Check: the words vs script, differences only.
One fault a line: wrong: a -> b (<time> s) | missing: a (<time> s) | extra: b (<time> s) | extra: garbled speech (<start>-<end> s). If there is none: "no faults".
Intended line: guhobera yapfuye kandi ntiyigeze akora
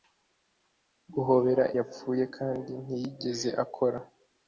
no faults